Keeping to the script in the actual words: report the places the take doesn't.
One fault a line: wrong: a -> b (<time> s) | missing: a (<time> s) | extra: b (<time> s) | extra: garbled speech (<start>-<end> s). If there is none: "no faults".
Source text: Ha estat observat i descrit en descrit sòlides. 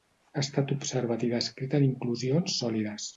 wrong: descrit -> inclusions (1.9 s)